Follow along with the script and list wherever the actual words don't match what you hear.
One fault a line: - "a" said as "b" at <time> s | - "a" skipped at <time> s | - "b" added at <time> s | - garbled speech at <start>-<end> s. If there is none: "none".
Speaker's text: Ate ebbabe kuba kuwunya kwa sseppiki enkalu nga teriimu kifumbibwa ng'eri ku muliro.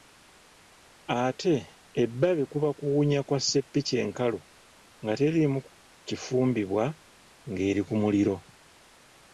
none